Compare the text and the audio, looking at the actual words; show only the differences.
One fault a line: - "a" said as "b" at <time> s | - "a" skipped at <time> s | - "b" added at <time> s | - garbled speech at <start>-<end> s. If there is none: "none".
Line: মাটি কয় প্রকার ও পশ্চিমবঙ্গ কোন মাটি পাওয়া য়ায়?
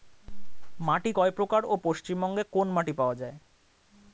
none